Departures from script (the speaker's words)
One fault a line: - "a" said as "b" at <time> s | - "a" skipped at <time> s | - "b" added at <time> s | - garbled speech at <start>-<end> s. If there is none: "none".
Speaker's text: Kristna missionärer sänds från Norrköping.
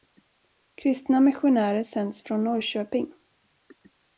none